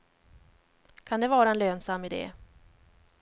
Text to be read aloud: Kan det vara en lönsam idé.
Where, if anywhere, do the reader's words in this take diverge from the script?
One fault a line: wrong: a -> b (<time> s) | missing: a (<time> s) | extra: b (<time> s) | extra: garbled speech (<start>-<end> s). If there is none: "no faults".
no faults